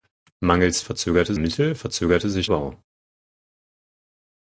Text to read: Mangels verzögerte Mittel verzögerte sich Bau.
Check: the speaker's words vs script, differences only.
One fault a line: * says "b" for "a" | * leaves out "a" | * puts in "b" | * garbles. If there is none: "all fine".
all fine